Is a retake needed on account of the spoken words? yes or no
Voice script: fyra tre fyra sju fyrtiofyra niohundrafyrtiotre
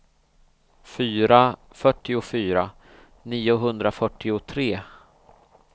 yes